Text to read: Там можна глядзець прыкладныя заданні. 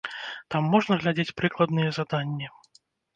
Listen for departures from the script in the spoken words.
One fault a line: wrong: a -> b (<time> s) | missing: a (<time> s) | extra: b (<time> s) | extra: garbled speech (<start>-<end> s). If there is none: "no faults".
no faults